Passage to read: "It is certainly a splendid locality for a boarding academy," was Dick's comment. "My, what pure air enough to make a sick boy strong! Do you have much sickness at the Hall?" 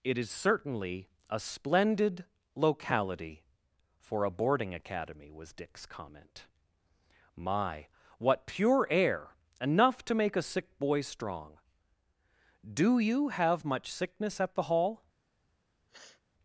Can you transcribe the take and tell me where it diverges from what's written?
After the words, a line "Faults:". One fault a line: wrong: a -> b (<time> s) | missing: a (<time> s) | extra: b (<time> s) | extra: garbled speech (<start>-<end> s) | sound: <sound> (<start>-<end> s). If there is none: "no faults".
"It is certainly a splendid locality for a boarding academy," was Dick's comment. "My, what pure air enough to make a sick boy strong! Do you have much sickness at the Hall?"
Faults:
sound: sniff (15.9-16.2 s)